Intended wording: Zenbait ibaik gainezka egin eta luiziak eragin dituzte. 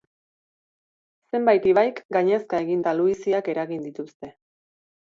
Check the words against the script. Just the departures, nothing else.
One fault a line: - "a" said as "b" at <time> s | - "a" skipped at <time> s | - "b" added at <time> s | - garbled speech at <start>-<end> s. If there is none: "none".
none